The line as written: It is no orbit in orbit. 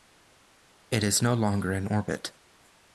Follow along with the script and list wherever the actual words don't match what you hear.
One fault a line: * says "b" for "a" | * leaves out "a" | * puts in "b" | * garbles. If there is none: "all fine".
* says "longer" for "orbit"